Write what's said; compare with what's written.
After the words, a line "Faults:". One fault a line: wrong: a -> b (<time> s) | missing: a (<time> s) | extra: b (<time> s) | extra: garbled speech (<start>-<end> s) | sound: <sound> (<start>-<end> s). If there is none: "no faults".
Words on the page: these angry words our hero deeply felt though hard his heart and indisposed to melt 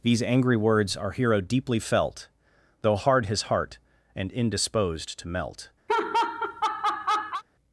these angry words our hero deeply felt though hard his heart and indisposed to melt
Faults:
sound: laugh (5.9-7.4 s)